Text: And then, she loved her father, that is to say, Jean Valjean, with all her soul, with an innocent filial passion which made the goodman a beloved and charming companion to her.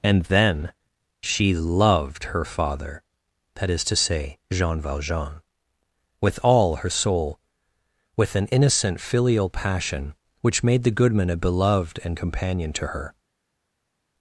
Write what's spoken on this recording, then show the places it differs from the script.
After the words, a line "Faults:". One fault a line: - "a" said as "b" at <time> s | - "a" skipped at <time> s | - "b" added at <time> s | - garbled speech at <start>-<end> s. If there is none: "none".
And then, she loved her father, that is to say, Jean Valjean, with all her soul, with an innocent filial passion which made the goodman a beloved and companion to her.
Faults:
- "charming" skipped at 12.2 s